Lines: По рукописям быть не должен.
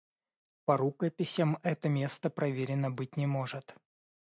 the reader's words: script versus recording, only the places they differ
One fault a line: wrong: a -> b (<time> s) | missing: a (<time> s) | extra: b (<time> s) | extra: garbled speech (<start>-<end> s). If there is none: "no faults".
extra: это место проверено (1.6 s)
wrong: должен -> может (3.3 s)